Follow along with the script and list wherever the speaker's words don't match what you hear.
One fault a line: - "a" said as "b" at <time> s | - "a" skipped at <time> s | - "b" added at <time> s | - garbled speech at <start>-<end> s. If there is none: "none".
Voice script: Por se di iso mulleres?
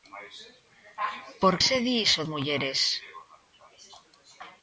none